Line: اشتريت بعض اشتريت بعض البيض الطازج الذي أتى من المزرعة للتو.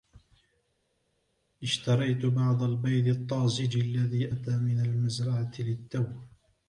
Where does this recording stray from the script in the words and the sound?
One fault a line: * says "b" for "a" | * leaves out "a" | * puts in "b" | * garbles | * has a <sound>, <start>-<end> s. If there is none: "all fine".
* leaves out "اشتريت بعض"